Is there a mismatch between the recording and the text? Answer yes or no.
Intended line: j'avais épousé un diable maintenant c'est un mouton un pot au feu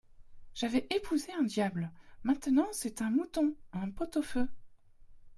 no